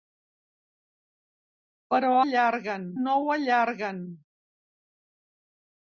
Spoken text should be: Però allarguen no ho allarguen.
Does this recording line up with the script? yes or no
yes